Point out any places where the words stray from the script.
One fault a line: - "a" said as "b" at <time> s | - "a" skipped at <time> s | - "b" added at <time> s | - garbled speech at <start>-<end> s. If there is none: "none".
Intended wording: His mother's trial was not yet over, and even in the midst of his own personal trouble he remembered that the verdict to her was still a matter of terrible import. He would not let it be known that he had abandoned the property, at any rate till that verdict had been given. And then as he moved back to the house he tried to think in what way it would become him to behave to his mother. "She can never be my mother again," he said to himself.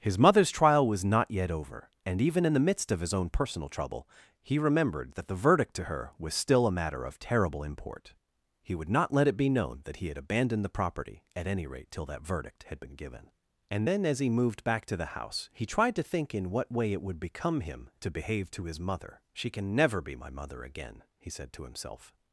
none